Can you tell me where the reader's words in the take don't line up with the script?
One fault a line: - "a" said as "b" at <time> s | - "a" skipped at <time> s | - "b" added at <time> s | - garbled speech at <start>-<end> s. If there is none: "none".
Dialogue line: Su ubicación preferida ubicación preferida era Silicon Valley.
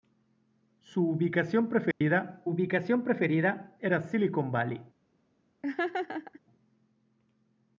none